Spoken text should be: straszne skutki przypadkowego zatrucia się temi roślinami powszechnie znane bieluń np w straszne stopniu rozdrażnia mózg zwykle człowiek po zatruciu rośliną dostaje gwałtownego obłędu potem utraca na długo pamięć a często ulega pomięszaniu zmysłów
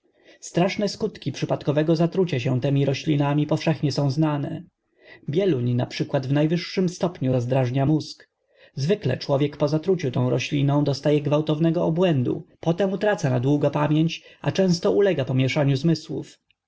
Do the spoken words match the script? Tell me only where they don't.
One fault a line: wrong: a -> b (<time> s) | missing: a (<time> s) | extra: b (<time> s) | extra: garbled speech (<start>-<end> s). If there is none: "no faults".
extra: są (3.9 s)
wrong: straszne -> najwyższym (6.3 s)
extra: tą (10.1 s)